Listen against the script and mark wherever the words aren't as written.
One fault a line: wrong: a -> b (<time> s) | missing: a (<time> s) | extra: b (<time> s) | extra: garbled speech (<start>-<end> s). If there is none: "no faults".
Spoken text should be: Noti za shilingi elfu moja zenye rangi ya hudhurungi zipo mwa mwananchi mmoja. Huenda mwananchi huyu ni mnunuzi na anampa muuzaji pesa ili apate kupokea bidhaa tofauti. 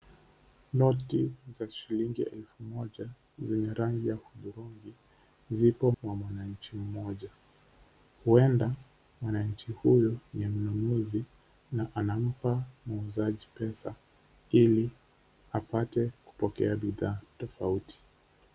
no faults